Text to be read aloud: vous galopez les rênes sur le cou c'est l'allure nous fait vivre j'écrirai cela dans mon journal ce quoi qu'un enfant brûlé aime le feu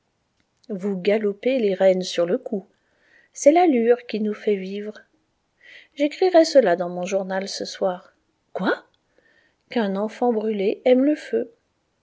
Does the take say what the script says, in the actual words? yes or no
no